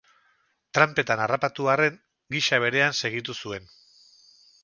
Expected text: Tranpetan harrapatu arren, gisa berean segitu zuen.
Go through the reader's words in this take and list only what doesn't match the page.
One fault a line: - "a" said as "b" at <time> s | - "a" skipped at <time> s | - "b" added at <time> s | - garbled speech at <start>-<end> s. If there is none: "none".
none